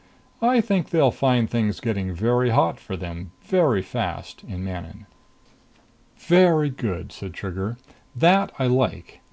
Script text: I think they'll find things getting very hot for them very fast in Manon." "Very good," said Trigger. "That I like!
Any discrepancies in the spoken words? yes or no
no